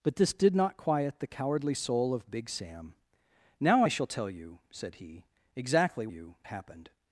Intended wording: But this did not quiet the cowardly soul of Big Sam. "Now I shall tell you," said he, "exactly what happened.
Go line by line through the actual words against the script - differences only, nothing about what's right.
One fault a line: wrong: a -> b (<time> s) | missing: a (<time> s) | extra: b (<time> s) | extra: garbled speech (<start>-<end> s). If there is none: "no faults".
wrong: what -> you (6.1 s)